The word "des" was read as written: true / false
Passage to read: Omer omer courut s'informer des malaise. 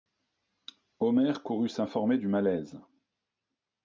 false